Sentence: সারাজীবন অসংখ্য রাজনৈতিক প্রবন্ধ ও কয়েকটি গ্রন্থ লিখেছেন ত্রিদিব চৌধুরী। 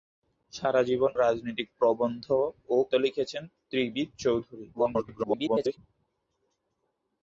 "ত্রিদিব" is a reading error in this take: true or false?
false